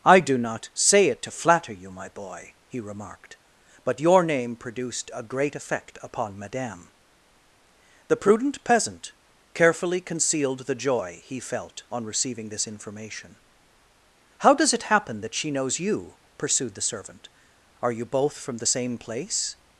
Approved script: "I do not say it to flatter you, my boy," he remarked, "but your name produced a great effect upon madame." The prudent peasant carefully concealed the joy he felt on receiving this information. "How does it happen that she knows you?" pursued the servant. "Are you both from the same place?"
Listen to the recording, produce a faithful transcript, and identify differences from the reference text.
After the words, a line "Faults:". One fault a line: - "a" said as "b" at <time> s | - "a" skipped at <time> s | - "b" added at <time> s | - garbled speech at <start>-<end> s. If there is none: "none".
"I do not say it to flatter you, my boy," he remarked, "but your name produced a great effect upon madame." The prudent peasant carefully concealed the joy he felt on receiving this information. "How does it happen that she knows you?" pursued the servant. "Are you both from the same place?"
Faults:
none